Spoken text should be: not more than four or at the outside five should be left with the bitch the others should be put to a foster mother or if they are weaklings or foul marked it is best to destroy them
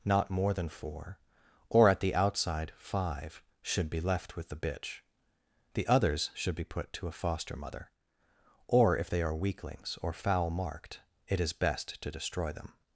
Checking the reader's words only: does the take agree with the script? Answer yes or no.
yes